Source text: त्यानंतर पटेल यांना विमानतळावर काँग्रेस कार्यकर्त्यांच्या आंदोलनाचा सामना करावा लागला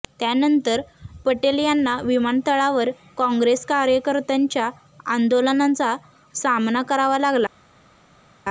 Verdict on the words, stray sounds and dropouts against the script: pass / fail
pass